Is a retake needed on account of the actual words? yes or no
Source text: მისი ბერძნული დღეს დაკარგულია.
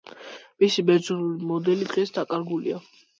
yes